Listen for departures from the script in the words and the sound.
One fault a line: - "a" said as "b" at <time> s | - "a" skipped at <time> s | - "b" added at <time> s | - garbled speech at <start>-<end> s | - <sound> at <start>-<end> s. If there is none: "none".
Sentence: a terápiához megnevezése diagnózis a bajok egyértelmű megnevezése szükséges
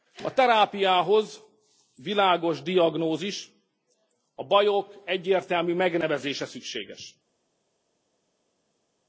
- "megnevezése" said as "világos" at 1.9 s